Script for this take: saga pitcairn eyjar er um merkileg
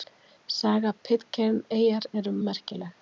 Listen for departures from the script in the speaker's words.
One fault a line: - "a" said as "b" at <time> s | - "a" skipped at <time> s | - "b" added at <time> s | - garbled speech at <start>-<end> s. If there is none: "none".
none